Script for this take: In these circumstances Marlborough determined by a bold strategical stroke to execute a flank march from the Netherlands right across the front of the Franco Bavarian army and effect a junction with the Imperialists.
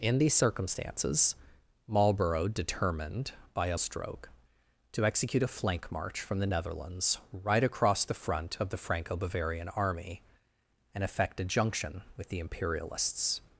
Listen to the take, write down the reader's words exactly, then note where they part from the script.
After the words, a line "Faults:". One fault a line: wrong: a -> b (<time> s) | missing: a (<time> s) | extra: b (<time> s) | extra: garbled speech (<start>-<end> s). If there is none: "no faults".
In these circumstances Marlborough determined by a stroke to execute a flank march from the Netherlands right across the front of the Franco Bavarian army and effect a junction with the Imperialists.
Faults:
missing: bold strategical (3.8 s)